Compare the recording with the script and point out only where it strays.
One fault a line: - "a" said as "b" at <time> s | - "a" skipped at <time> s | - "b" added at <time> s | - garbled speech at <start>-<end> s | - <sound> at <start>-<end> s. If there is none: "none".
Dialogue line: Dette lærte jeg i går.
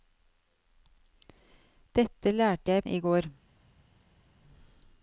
none